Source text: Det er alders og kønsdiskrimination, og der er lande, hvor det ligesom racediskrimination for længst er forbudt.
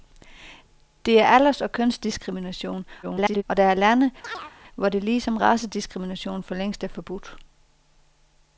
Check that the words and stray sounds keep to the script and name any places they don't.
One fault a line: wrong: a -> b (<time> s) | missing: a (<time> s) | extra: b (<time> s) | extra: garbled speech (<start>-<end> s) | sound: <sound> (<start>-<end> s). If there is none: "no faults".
extra: garbled speech (3.0-3.4 s)
sound: chirp (4.2-4.5 s)